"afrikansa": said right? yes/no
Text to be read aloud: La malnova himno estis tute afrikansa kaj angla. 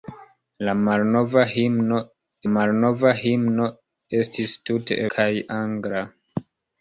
no